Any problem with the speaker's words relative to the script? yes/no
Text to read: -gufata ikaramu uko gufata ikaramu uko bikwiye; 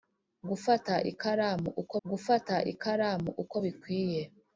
no